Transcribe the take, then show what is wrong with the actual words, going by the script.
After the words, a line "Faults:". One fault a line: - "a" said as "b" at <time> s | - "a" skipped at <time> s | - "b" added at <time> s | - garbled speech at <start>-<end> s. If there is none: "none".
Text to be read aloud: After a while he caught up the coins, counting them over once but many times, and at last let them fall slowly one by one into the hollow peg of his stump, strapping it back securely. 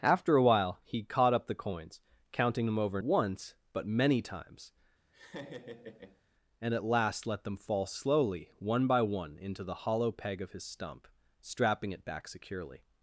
After a while he caught up the coins, counting them over once but many times, and at last let them fall slowly one by one into the hollow peg of his stump, strapping it back securely.
Faults:
none